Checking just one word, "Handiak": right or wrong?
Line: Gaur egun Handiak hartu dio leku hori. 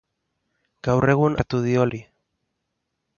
wrong